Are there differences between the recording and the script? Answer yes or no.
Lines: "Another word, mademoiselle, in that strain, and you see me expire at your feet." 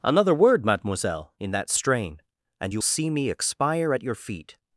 no